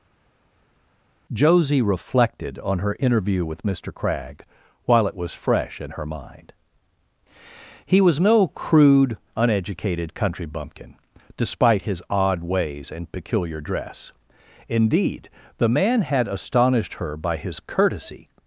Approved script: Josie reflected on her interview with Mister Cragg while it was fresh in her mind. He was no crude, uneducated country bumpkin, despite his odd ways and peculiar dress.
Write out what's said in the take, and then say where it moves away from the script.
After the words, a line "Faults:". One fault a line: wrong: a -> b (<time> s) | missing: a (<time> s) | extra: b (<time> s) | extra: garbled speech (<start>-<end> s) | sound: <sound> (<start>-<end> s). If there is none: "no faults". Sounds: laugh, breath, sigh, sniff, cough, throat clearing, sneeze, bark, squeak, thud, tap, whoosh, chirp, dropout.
Josie reflected on her interview with Mister Cragg while it was fresh in her mind. He was no crude, uneducated country bumpkin, despite his odd ways and peculiar dress. Indeed, the man had astonished her by his courtesy
Faults:
extra: Indeed the man had astonished her by his courtesy (14.7 s)